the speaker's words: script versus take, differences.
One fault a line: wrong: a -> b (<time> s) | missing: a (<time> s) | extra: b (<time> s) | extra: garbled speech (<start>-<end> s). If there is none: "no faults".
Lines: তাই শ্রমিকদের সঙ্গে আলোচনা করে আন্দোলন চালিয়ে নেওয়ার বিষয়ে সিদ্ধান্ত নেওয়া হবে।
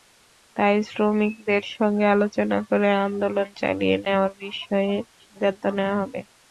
no faults